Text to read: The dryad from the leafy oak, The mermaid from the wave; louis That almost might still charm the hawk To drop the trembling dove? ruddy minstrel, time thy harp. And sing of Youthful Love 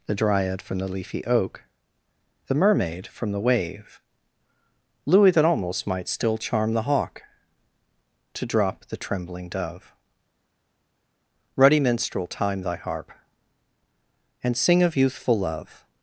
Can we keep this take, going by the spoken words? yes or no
yes